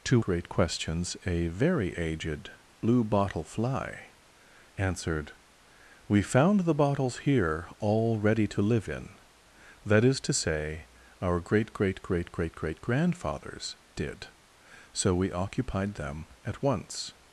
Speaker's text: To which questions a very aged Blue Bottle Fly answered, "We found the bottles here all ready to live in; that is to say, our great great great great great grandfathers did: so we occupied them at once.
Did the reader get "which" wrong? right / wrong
wrong